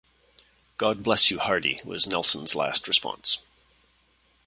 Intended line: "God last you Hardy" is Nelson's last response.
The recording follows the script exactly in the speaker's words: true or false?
false